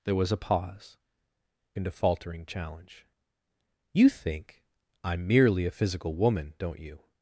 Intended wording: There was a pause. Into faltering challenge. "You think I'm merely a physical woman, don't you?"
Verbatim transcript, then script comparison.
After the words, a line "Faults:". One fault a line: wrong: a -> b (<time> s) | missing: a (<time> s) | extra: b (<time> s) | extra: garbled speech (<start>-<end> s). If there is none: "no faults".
There was a pause. Into faltering challenge. "You think I'm merely a physical woman, don't you?"
Faults:
no faults